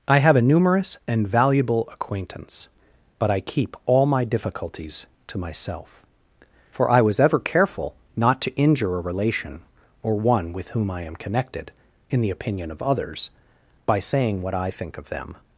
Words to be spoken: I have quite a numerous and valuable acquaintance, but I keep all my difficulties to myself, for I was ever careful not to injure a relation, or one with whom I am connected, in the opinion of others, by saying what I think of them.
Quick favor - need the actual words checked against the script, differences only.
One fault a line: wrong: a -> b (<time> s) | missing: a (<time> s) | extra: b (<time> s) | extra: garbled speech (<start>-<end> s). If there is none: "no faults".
missing: quite (0.3 s)